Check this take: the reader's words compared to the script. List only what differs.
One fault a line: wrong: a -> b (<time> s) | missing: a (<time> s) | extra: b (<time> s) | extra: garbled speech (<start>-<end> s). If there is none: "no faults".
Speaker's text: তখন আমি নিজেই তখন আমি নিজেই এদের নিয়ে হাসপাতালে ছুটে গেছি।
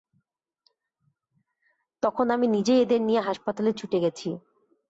missing: তখন আমি নিজেই (2.8 s)